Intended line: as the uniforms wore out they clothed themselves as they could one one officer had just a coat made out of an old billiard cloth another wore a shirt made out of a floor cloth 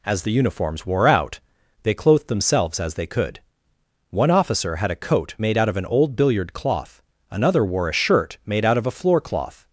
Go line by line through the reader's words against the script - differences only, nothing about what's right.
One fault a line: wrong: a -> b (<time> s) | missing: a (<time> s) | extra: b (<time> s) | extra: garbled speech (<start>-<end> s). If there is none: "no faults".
missing: one (4.3 s)
missing: just (4.9 s)